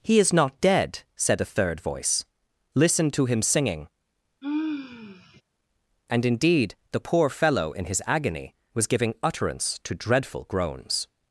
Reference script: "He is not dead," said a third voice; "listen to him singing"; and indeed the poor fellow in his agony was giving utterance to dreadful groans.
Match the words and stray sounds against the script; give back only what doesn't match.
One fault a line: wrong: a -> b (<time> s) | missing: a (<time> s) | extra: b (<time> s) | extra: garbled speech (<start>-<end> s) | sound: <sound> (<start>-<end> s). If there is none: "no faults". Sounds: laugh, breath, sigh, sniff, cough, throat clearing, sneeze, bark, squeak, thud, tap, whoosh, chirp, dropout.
sound: sigh (4.4-5.4 s)